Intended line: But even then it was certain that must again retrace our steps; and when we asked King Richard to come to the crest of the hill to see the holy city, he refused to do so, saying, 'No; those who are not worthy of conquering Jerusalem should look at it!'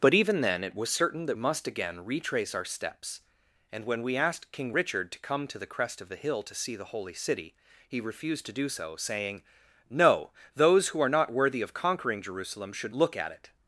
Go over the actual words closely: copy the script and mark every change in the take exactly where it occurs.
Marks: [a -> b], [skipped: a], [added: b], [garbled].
But even then it was certain that must again retrace our steps; and when we asked King Richard to come to the crest of the hill to see the holy city, he refused to do so, saying, 'No; those who are not worthy of conquering Jerusalem should look at it!'